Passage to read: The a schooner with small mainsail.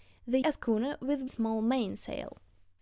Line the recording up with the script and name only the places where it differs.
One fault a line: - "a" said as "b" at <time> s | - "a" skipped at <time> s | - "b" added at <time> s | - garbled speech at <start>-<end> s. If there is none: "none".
none